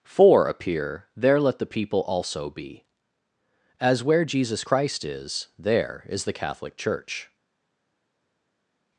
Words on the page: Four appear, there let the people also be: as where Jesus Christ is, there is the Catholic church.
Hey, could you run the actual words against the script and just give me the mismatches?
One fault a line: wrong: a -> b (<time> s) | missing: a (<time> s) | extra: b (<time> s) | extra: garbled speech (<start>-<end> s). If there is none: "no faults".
no faults